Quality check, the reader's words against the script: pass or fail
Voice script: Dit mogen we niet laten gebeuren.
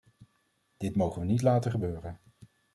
pass